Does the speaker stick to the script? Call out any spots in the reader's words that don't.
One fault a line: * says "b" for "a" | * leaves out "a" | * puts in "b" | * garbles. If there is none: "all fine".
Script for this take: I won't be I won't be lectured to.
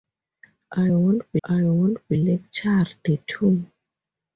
all fine